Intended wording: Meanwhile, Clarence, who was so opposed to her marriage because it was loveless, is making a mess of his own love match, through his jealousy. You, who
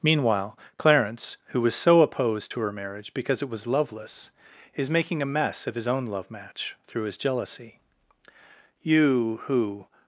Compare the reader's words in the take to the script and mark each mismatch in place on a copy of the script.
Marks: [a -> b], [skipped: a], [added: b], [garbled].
Meanwhile, Clarence, who was so opposed to her marriage because it was loveless, is making a mess of his own love match, through his jealousy. You, who